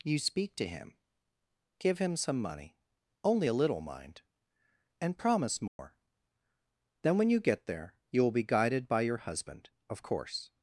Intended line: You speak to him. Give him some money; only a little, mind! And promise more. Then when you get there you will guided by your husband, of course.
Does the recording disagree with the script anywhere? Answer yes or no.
yes